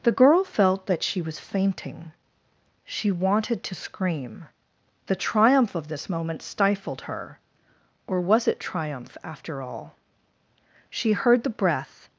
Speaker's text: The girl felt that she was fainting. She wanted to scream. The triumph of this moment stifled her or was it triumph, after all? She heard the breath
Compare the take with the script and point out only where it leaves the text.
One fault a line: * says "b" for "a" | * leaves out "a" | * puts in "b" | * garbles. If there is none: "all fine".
all fine